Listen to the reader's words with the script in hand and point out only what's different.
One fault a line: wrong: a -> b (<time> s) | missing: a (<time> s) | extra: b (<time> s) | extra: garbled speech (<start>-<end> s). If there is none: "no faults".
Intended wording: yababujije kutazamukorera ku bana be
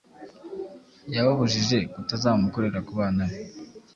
no faults